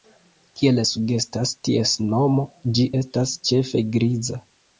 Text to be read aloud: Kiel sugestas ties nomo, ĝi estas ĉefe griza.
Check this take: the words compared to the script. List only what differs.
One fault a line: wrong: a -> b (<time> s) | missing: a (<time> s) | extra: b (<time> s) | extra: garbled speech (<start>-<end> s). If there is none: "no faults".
no faults